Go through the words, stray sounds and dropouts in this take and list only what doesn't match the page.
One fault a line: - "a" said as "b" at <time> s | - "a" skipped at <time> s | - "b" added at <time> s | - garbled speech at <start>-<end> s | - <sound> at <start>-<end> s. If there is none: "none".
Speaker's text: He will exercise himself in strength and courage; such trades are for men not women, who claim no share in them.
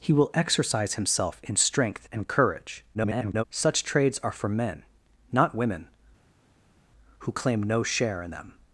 - garbled speech at 2.9-3.4 s